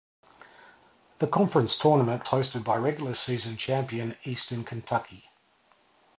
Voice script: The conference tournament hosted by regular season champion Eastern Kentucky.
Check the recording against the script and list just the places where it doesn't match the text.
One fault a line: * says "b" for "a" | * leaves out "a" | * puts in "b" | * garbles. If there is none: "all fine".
all fine